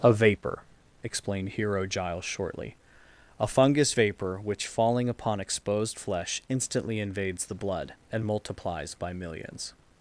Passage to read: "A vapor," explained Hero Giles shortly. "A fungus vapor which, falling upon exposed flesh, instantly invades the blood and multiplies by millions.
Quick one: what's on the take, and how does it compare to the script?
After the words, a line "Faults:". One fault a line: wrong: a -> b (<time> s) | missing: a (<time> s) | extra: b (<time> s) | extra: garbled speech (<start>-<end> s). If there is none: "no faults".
"A vapor," explained Hero Giles shortly. "A fungus vapor which, falling upon exposed flesh, instantly invades the blood and multiplies by millions.
Faults:
no faults